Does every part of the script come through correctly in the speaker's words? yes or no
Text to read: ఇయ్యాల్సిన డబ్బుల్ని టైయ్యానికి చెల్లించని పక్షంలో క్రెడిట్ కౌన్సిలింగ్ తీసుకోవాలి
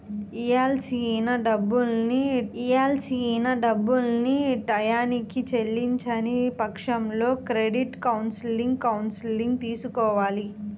no